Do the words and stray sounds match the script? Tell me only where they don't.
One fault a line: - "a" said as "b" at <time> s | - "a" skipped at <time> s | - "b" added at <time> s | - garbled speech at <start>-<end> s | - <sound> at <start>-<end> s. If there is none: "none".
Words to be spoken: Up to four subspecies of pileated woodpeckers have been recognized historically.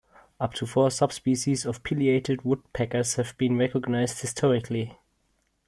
none